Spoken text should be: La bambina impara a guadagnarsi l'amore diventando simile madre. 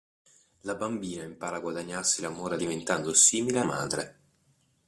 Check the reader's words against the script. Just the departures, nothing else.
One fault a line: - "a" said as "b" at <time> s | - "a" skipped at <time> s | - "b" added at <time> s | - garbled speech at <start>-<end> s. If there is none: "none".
none